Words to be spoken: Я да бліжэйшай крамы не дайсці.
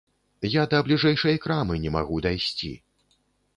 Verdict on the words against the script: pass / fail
fail